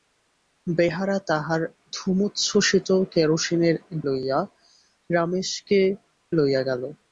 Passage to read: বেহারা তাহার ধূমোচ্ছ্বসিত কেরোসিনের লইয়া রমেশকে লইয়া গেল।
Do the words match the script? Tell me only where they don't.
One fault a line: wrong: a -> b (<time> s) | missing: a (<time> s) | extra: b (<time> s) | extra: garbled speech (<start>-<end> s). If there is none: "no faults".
no faults